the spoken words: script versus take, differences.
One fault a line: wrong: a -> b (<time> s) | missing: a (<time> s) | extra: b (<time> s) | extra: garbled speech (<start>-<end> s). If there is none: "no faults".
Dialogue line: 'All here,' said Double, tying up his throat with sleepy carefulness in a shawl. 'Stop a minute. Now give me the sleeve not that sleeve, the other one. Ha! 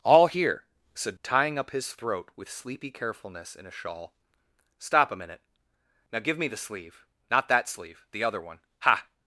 missing: Double (1.1 s)